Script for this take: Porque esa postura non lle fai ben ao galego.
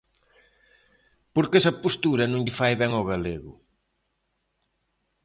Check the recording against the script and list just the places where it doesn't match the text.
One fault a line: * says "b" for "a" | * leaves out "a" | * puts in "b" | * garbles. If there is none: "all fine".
all fine